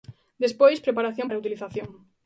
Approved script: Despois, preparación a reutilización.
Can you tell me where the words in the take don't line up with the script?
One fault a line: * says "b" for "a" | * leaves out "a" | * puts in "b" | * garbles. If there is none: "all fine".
all fine